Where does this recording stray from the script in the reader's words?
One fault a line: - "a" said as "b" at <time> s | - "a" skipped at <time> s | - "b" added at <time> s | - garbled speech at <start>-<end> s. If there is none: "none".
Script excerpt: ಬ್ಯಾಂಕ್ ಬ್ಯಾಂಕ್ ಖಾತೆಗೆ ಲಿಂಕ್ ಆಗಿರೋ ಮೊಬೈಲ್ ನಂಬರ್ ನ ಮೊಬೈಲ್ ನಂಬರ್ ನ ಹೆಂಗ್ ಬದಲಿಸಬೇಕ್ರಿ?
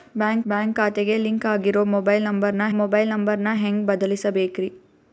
none